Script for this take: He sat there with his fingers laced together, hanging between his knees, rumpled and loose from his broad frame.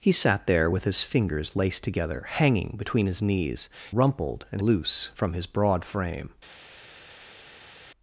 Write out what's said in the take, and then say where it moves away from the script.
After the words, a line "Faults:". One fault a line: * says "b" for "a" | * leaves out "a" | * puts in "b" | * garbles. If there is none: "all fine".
He sat there with his fingers laced together, hanging between his knees, rumpled and loose from his broad frame.
Faults:
all fine